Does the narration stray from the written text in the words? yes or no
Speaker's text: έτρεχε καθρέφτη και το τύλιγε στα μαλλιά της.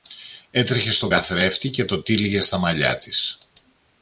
yes